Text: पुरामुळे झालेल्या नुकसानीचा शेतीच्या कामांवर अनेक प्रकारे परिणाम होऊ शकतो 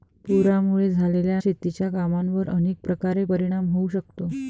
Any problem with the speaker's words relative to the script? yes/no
yes